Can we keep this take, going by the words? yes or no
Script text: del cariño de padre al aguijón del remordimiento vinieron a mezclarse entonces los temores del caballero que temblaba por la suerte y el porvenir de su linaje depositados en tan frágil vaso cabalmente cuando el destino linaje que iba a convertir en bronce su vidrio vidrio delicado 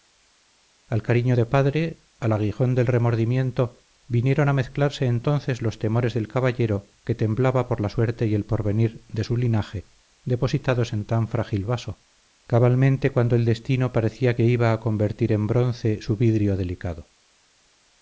no